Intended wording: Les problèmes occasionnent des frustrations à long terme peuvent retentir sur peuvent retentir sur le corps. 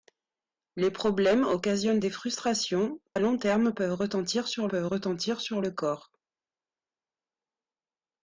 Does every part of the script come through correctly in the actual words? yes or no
yes